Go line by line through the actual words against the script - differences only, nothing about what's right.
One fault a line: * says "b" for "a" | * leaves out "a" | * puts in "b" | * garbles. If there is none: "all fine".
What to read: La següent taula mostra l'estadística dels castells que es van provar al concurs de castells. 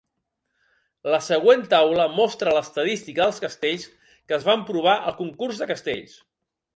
all fine